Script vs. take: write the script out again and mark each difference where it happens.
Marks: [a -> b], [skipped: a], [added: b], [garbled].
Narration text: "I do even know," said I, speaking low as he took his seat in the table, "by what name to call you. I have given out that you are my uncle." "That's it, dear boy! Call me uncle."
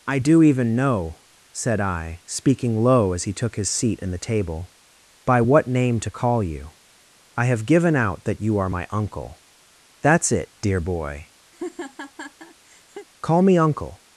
"I do even know," said I, speaking low as he took his seat in the table, "by what name to call you. I have given out that you are my uncle." "That's it, dear boy! Call me uncle."